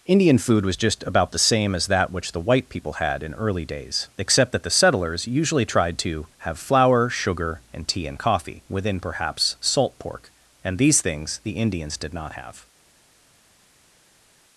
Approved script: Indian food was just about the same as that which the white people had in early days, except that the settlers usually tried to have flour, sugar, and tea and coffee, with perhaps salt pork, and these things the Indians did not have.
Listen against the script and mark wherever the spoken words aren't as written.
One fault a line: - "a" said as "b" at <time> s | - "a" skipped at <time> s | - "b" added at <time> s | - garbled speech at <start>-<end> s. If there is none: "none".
- "with" said as "within" at 8.7 s